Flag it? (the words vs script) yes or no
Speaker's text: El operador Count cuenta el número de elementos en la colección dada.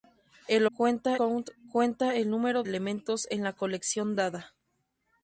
yes